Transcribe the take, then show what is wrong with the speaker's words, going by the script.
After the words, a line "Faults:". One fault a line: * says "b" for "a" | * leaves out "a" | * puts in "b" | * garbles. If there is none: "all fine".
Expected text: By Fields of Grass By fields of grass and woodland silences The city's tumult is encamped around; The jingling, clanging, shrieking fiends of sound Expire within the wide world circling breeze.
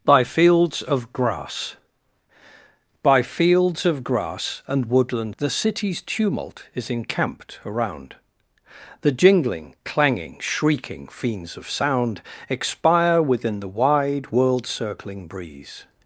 By Fields of Grass By fields of grass and woodland The city's tumult is encamped around; The jingling, clanging, shrieking fiends of sound Expire within the wide world circling breeze.
Faults:
* leaves out "silences"